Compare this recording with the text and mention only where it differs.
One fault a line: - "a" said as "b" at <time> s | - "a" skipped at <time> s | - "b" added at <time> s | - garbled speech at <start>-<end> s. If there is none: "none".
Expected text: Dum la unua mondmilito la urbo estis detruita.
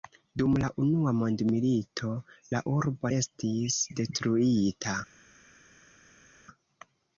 none